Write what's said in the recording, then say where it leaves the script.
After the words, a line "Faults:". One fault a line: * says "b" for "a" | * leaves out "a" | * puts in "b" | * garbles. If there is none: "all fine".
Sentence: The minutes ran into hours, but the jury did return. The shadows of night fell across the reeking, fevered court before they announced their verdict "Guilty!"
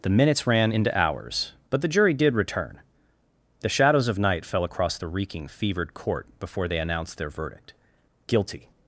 The minutes ran into hours, but the jury did return. The shadows of night fell across the reeking, fevered court before they announced their verdict "Guilty!"
Faults:
all fine